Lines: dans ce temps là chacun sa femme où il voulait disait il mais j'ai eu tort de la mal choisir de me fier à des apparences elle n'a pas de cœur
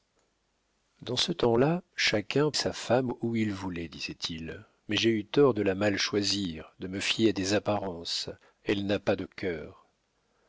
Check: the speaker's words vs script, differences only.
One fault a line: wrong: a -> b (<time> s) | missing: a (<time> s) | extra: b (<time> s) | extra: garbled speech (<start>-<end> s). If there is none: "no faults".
no faults